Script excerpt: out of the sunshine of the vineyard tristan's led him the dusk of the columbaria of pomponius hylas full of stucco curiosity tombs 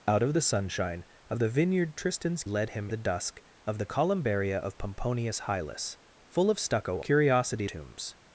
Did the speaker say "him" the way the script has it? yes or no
yes